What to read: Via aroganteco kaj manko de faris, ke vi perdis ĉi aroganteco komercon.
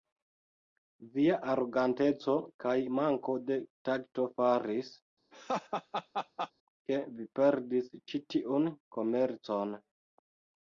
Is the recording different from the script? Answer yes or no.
yes